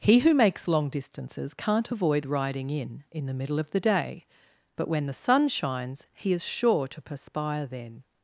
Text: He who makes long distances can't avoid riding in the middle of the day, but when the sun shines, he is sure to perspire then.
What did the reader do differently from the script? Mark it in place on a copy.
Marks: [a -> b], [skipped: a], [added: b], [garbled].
He who makes long distances can't avoid riding in [added: in] the middle of the day, but when the sun shines, he is sure to perspire then.